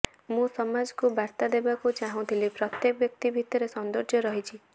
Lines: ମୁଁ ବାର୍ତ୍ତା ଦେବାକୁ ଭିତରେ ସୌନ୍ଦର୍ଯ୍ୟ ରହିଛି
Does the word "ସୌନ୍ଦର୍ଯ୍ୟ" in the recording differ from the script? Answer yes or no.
no